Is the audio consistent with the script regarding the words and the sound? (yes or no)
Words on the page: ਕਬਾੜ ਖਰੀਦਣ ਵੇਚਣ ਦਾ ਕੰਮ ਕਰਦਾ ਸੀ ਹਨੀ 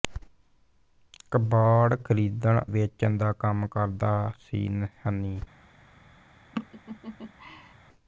no